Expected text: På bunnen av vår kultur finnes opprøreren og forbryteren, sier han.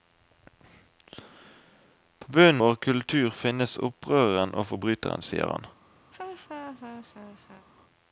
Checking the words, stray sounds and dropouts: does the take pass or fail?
fail